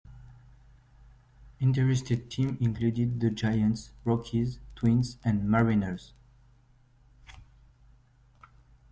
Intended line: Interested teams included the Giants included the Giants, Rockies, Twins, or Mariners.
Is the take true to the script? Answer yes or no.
no